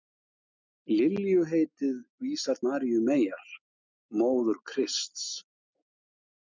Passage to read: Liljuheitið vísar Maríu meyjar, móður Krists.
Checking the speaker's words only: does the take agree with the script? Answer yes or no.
yes